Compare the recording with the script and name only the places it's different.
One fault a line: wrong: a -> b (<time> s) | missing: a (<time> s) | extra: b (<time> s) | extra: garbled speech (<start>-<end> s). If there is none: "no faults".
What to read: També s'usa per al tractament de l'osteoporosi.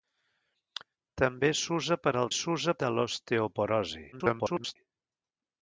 wrong: tractament -> s'usa (2.4 s)
extra: garbled speech (4.1-4.8 s)